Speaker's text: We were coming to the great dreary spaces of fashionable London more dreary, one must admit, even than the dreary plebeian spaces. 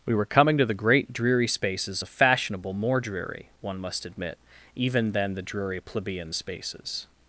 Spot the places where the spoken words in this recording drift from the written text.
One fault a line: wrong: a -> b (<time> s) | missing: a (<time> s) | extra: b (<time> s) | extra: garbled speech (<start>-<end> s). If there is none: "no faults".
missing: London (2.7 s)